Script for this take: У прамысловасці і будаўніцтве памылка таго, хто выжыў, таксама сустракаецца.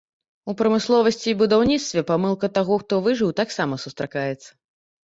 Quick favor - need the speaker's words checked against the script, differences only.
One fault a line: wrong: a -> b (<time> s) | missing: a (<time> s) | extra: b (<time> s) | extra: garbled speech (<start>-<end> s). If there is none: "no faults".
no faults